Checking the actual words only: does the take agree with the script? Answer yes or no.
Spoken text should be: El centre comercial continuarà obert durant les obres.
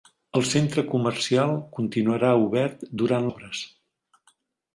no